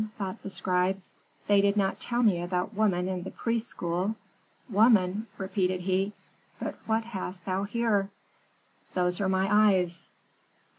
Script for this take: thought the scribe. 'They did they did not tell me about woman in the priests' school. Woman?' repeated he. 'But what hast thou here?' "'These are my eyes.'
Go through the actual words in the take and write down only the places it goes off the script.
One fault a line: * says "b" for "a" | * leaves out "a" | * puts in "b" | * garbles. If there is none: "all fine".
* leaves out "they did"
* says "Those" for "These"